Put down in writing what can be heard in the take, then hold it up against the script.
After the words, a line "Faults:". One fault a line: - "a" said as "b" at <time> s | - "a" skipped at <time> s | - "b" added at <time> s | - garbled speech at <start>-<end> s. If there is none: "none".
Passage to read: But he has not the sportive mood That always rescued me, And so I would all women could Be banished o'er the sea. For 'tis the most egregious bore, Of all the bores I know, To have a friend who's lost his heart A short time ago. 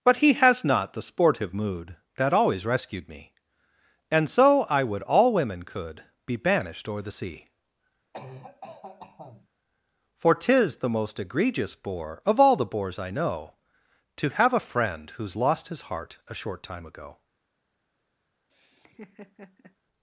But he has not the sportive mood That always rescued me, And so I would all women could Be banished o'er the sea. For 'tis the most egregious bore, Of all the bores I know, To have a friend who's lost his heart A short time ago.
Faults:
none